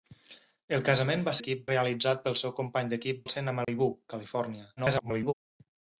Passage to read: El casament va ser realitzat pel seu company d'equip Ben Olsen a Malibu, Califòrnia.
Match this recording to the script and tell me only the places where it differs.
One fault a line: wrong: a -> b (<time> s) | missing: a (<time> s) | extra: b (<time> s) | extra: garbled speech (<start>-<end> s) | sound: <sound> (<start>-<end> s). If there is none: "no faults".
wrong: ser -> d'equip (1.4 s)
missing: Ben (3.3 s)
sound: dropout (3.6-3.7 s)
extra: garbled speech (4.8-5.3 s)